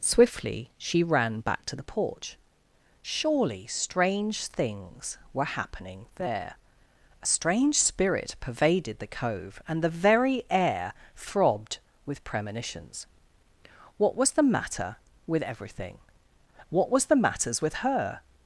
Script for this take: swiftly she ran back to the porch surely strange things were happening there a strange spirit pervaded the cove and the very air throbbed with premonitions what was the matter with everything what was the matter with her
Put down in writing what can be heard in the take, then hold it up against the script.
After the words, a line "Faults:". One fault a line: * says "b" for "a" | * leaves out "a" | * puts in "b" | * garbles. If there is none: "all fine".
swiftly she ran back to the porch surely strange things were happening there a strange spirit pervaded the cove and the very air throbbed with premonitions what was the matter with everything what was the matters with her
Faults:
* says "matters" for "matter"